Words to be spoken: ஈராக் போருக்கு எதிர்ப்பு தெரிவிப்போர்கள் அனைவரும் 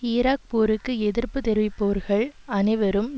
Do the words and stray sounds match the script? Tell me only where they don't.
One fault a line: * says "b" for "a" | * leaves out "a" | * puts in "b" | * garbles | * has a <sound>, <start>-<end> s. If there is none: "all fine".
all fine